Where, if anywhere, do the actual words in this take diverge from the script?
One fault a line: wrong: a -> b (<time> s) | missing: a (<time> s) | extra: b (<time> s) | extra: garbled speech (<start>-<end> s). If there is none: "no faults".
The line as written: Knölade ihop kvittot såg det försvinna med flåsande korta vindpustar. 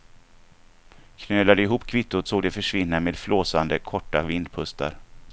no faults